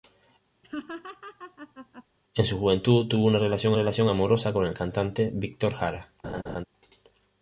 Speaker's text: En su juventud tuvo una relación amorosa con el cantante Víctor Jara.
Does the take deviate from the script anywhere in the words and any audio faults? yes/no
yes